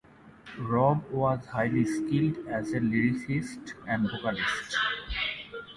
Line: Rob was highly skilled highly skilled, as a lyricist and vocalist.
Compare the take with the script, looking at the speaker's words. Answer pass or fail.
fail